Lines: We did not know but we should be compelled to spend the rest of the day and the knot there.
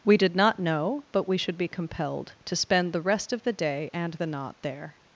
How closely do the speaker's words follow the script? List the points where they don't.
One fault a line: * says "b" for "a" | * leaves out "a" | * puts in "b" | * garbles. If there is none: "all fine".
all fine